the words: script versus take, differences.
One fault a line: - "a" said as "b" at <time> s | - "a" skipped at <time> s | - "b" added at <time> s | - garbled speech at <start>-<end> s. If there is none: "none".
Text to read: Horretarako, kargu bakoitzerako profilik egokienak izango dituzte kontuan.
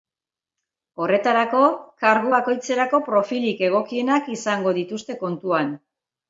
none